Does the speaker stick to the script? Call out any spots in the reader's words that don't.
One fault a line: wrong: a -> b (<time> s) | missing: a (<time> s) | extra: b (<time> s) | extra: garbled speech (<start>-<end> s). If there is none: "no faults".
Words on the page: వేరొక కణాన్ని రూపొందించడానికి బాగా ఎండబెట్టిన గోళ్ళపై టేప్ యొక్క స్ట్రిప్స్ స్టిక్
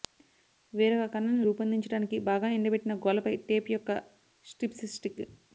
no faults